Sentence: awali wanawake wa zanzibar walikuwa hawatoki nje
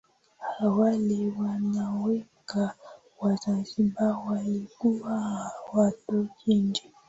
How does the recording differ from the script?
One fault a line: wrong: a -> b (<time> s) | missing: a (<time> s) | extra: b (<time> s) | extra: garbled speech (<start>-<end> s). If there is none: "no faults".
no faults